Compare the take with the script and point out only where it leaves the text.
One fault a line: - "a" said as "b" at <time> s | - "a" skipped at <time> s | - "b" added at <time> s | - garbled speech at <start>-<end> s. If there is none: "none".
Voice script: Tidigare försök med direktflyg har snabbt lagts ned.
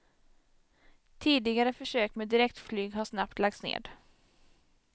none